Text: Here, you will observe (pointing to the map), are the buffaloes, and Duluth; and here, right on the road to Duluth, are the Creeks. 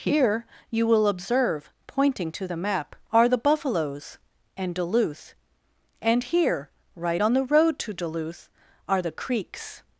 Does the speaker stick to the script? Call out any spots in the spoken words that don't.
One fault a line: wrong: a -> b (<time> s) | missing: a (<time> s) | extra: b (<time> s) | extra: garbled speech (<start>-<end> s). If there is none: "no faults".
no faults